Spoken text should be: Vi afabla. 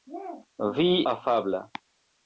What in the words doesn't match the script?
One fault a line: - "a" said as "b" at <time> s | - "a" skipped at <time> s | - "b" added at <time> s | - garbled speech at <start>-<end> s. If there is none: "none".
none